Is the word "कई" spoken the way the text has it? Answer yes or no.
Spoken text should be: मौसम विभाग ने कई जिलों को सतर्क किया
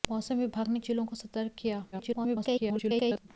no